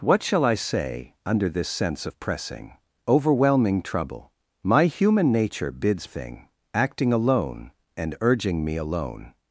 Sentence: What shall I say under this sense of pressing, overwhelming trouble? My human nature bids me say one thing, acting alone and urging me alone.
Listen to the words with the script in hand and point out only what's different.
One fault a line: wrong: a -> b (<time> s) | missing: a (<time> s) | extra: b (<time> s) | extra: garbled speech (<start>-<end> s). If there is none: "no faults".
missing: me say one (6.1 s)